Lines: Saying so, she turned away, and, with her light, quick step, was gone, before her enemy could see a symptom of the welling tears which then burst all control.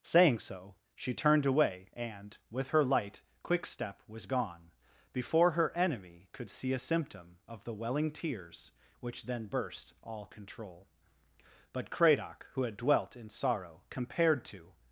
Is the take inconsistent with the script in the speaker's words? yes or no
yes